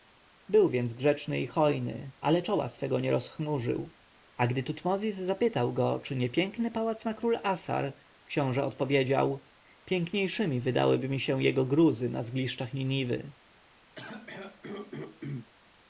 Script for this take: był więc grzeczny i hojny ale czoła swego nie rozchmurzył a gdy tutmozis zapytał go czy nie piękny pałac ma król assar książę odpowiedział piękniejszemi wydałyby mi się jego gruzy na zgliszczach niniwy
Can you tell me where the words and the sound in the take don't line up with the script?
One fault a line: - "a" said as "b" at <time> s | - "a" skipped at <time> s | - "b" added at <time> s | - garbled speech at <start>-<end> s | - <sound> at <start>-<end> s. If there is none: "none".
- throat clearing at 13.9-15.5 s